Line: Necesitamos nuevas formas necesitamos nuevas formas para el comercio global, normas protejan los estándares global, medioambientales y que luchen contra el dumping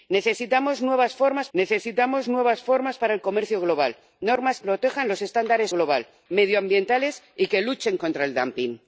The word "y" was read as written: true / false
true